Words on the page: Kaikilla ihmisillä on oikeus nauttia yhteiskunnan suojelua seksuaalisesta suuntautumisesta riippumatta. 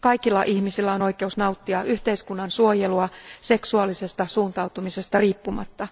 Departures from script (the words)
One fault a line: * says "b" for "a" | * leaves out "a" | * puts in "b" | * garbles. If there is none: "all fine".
all fine